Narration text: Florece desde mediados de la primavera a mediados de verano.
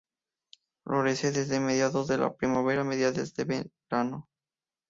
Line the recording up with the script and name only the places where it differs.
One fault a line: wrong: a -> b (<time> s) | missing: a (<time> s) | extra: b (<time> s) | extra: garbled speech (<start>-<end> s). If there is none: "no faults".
no faults